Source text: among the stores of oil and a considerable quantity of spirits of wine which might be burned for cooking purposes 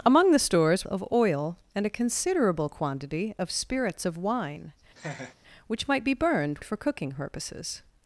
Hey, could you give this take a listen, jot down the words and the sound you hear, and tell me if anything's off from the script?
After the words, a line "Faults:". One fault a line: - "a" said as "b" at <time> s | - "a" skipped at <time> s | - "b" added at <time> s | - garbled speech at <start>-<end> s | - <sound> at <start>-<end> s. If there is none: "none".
among the stores of oil and a considerable quantity of spirits of wine which might be burned for cooking purposes
Faults:
- laugh at 5.0-5.3 s